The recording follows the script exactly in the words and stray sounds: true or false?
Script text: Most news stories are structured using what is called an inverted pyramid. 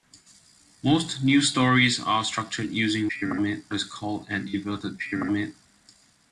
false